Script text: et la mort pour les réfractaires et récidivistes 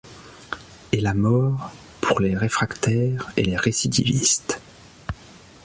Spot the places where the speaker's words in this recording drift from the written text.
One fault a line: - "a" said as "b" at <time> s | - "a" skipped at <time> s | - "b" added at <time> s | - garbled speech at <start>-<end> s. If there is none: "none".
- "les" added at 3.4 s